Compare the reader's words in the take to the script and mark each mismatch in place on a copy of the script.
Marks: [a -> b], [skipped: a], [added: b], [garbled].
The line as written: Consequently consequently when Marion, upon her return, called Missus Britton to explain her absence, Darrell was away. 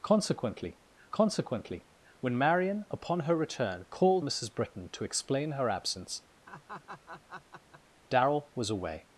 Consequently consequently when Marion, upon her return, called Missus Britton to explain her absence, Darrell was away.